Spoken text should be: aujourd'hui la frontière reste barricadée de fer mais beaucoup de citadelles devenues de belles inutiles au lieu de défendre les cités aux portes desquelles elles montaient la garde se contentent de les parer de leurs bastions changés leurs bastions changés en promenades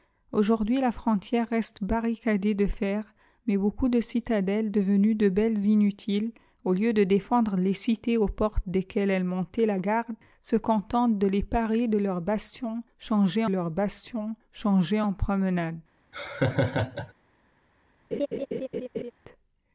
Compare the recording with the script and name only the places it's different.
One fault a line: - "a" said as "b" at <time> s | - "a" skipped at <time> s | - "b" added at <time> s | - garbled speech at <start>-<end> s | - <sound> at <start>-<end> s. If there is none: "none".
- laugh at 16.1-17.1 s
- laugh at 18.1-19.1 s